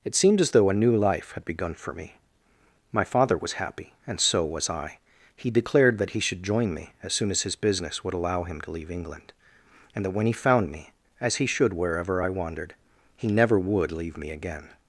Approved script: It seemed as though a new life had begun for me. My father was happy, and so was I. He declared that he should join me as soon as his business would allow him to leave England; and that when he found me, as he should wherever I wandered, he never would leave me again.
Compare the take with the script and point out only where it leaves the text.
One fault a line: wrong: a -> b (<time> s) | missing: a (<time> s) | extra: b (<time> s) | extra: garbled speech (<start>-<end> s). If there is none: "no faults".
no faults